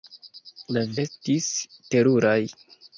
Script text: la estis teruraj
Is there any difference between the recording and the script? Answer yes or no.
no